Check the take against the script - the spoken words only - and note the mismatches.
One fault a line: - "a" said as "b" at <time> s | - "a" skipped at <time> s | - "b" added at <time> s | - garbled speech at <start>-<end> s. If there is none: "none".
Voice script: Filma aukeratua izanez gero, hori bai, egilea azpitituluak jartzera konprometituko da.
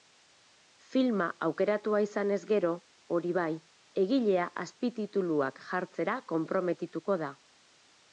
none